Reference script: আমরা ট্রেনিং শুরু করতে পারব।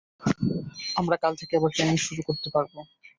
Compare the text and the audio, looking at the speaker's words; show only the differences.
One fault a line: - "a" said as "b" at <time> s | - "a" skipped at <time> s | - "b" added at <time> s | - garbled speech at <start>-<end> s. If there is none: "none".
- "কাল থেকে আবার" added at 1.2 s